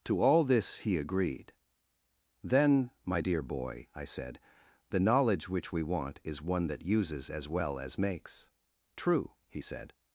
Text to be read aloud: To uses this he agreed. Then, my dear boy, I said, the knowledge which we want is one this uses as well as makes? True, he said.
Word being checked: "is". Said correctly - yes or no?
yes